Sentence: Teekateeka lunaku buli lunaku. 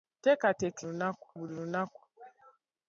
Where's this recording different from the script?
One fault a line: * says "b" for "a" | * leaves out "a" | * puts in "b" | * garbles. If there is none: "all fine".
all fine